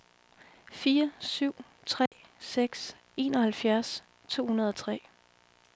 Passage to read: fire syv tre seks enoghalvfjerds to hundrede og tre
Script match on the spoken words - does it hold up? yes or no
yes